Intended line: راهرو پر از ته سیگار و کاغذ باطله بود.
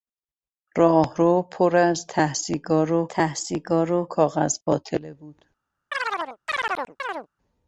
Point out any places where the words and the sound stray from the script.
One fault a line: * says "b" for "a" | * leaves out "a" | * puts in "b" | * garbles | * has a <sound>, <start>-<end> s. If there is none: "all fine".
* puts in "ته سیگار و"
* has a chirp, 5.9-7.3 s